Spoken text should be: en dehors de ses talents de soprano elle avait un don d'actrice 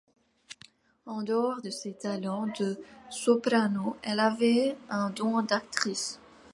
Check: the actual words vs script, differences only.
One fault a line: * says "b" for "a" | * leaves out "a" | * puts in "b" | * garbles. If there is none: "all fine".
all fine